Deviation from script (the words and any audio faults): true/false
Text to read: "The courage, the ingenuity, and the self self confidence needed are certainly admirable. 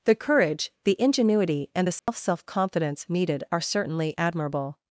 true